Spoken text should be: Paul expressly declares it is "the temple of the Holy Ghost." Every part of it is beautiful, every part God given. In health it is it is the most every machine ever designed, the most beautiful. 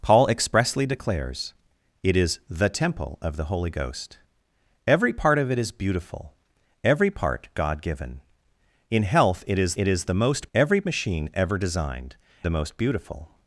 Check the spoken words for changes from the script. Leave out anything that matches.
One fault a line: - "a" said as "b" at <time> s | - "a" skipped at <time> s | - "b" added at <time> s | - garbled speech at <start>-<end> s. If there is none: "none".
none